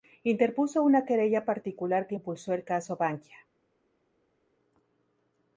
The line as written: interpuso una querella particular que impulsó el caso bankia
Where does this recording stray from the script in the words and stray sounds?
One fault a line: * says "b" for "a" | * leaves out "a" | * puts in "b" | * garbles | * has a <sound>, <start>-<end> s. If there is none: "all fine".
all fine